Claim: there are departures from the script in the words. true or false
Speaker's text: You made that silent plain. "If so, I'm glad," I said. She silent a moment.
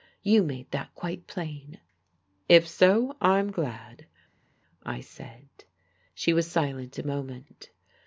true